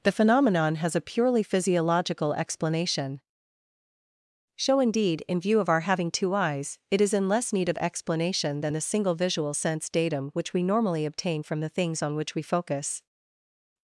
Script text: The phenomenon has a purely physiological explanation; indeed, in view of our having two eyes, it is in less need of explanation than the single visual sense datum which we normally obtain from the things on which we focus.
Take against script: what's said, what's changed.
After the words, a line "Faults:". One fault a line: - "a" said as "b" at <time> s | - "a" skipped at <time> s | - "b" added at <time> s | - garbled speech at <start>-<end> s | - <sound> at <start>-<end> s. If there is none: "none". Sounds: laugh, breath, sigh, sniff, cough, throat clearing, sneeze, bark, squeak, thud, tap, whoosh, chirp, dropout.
The phenomenon has a purely physiological explanation; show indeed, in view of our having two eyes, it is in less need of explanation than the single visual sense datum which we normally obtain from the things on which we focus.
Faults:
- "show" added at 4.5 s